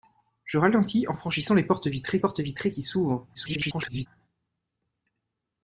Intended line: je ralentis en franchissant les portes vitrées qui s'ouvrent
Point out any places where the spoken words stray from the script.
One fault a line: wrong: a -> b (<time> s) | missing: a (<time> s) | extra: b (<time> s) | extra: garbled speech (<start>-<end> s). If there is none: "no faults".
extra: portes vitrées (2.2 s)
extra: garbled speech (3.3-4.1 s)